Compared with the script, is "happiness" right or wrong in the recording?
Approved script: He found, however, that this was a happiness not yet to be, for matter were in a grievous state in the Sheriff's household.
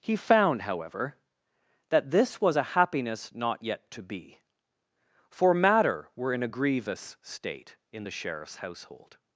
right